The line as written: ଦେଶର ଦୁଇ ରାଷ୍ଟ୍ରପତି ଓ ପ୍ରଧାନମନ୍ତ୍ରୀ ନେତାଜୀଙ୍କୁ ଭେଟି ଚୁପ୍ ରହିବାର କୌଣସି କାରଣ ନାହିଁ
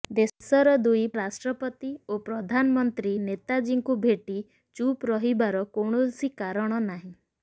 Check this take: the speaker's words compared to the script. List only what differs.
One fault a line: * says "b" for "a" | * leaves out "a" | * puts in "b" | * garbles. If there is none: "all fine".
all fine